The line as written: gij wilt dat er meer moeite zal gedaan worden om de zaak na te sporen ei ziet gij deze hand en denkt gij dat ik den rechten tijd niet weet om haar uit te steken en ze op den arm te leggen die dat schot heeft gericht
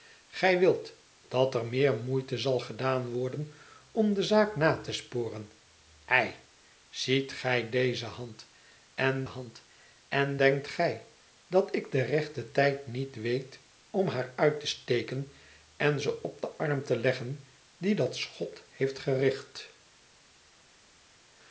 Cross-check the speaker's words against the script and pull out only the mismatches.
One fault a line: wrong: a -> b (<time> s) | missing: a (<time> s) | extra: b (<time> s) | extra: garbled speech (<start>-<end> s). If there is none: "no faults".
extra: hand en (9.2 s)